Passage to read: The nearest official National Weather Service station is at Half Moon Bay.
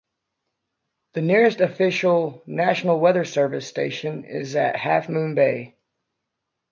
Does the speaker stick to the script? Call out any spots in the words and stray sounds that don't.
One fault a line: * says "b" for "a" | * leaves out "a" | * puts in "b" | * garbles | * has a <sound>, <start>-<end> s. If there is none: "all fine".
all fine